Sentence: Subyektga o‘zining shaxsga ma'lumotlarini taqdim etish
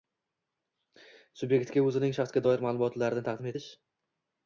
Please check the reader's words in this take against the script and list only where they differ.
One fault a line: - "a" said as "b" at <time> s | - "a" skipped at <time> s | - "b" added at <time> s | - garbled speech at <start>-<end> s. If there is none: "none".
- "doir" added at 2.5 s